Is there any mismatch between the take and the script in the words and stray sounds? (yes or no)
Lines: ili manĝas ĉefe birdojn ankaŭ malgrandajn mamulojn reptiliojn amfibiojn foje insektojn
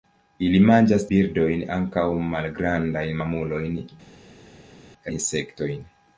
yes